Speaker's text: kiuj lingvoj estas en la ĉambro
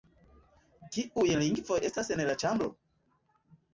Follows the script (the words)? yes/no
yes